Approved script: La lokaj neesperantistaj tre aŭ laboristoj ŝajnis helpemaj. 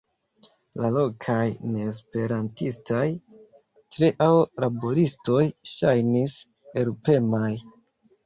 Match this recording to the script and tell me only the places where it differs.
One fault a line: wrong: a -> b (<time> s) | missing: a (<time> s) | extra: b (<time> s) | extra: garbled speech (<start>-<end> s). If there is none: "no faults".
no faults